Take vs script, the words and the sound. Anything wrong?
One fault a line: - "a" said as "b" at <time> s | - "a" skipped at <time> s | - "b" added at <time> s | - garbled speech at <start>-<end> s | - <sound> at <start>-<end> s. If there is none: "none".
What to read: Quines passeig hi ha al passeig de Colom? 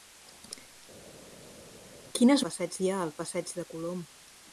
none